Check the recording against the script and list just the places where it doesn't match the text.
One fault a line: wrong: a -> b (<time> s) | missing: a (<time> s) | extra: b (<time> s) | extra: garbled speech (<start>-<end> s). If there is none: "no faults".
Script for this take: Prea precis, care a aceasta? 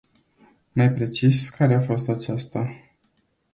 wrong: Prea -> Mai (0.7 s)
extra: fost (1.8 s)